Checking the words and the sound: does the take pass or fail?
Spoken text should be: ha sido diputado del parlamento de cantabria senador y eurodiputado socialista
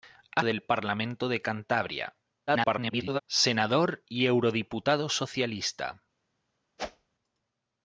fail